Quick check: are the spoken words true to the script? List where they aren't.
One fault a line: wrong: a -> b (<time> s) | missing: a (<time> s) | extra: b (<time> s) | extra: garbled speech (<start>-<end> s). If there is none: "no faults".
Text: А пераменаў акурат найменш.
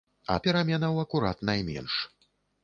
no faults